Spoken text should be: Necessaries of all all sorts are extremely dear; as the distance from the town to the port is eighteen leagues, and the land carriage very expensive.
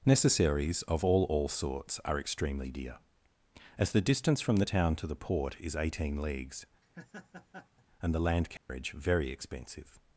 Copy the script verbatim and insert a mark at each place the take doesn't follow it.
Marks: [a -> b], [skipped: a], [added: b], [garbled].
Necessaries of all all sorts are extremely dear; as the distance from the town to the port is eighteen leagues, and the land carriage very expensive.